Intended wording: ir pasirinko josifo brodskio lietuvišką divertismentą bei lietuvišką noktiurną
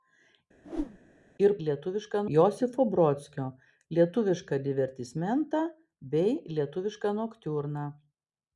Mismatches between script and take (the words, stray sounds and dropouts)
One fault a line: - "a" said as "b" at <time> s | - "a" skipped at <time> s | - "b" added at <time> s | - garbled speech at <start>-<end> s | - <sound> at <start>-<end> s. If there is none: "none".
- whoosh at 0.6-1.0 s
- "pasirinko" said as "lietuvišką" at 1.7 s